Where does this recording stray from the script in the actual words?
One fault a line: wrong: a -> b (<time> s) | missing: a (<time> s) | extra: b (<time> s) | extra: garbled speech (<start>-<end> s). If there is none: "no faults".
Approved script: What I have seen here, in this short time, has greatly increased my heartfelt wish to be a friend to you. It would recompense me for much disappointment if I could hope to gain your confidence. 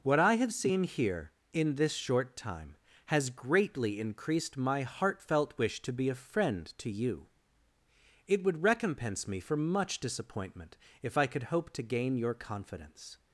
no faults